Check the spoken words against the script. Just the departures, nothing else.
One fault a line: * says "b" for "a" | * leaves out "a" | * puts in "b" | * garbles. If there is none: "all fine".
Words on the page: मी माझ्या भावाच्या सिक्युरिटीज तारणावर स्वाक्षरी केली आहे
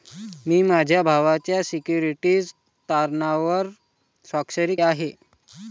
* leaves out "केली"